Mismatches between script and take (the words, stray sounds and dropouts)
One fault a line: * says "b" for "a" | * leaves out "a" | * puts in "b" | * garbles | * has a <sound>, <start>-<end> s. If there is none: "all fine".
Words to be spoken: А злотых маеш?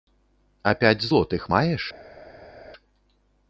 * puts in "пяць"